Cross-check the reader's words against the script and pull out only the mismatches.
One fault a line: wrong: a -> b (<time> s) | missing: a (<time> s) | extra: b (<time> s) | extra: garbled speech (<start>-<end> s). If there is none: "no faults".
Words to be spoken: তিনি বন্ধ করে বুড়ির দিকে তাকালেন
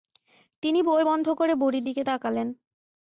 extra: বই (0.8 s)